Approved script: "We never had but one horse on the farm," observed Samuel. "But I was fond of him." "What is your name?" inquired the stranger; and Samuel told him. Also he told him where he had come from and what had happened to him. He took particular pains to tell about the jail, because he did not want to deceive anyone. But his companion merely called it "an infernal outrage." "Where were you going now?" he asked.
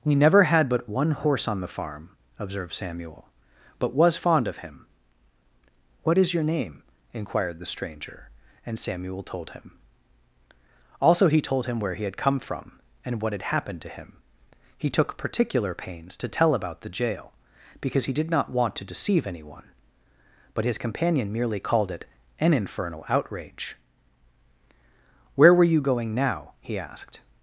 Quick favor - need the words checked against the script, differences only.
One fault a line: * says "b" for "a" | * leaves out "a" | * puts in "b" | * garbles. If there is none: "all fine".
* leaves out "I"